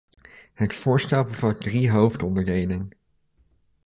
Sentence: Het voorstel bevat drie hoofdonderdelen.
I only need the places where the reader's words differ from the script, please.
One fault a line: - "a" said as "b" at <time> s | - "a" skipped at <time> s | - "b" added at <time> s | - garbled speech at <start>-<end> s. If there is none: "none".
none